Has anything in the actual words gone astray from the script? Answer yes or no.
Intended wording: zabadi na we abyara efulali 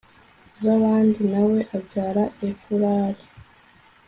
no